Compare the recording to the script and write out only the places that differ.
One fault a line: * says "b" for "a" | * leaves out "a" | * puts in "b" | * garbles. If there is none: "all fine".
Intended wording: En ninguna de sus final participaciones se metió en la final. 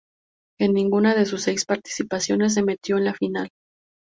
* says "seis" for "final"